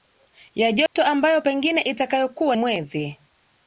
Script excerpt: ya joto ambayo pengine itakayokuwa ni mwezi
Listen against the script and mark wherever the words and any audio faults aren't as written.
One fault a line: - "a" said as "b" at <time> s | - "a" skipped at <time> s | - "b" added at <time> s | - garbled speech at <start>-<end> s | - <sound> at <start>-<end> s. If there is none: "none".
- dropout at 0.9-1.0 s
- "ni" skipped at 2.6 s